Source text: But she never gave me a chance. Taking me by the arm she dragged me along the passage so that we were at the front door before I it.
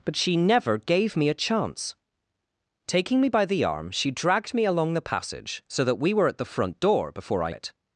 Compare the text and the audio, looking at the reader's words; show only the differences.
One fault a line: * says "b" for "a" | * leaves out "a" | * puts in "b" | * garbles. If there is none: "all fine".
all fine